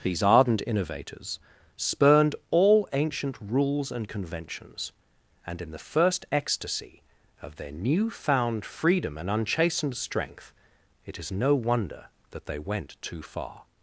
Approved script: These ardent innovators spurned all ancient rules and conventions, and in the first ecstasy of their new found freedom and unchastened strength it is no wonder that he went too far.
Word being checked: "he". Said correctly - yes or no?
no